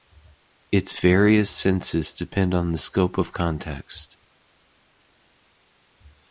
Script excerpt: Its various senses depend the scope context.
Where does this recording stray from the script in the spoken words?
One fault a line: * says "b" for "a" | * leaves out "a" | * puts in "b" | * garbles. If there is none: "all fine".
* puts in "on"
* puts in "of"